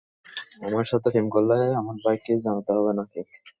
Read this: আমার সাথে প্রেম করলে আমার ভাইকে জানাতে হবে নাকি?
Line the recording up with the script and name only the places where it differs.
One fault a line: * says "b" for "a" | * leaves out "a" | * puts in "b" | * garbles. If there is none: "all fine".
all fine